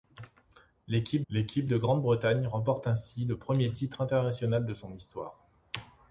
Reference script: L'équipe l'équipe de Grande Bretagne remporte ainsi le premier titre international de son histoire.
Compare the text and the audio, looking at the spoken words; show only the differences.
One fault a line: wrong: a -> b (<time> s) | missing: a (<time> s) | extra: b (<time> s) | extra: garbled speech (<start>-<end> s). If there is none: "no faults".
no faults